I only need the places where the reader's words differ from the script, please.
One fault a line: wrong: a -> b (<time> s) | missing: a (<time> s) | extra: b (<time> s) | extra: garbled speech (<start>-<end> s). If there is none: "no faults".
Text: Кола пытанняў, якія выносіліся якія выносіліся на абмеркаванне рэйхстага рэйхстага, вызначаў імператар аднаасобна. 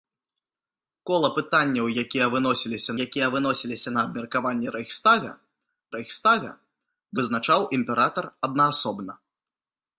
no faults